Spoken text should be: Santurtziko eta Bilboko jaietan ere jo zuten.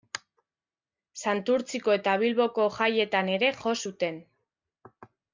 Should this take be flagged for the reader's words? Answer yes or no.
no